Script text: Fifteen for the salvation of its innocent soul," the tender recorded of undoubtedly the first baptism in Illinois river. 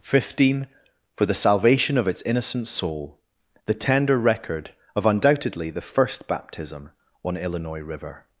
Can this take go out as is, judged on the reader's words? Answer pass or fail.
fail